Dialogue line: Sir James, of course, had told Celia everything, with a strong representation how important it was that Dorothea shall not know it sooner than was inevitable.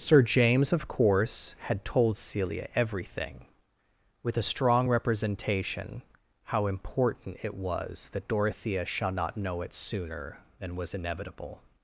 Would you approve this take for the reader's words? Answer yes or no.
yes